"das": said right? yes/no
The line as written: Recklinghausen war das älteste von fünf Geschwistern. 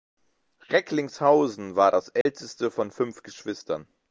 yes